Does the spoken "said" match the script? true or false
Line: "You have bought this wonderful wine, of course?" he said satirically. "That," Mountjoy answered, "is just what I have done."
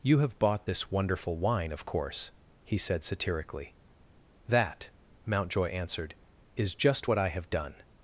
true